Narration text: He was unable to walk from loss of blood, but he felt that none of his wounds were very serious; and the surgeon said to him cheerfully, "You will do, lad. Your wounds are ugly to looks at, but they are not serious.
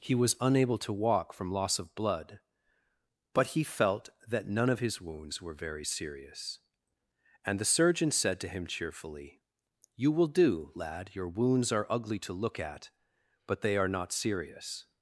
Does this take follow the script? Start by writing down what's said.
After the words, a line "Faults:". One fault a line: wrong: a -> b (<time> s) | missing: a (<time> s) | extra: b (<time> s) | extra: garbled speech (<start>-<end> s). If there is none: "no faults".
He was unable to walk from loss of blood, but he felt that none of his wounds were very serious; and the surgeon said to him cheerfully, "You will do, lad. Your wounds are ugly to look at, but they are not serious.
Faults:
wrong: looks -> look (12.3 s)